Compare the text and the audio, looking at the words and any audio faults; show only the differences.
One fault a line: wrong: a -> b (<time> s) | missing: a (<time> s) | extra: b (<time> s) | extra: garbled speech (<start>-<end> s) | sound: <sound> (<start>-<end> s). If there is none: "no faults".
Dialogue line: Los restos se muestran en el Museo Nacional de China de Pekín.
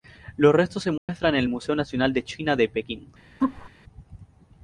sound: dropout (1.0-1.1 s)
sound: laugh (3.4-3.7 s)